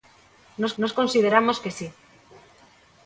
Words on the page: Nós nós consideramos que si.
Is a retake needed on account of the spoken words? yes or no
no